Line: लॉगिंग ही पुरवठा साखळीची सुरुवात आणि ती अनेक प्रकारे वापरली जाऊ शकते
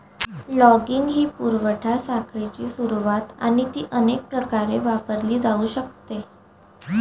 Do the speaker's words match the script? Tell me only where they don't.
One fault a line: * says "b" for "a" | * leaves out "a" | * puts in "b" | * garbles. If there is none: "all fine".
all fine